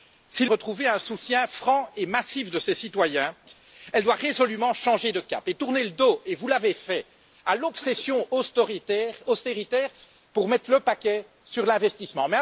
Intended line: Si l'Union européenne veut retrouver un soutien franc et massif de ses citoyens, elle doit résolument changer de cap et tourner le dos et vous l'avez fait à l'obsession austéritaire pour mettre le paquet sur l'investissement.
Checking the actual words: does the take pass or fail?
fail